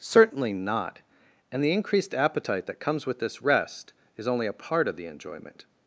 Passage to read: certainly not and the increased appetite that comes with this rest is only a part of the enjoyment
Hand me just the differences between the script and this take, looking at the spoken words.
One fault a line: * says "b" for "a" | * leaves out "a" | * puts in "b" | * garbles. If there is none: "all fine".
all fine